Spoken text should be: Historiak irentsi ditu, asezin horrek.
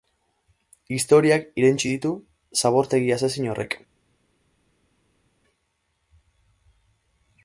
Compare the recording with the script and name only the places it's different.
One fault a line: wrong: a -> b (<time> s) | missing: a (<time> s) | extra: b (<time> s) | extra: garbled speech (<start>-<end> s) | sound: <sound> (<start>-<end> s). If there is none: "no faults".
extra: zabortegi (2.6 s)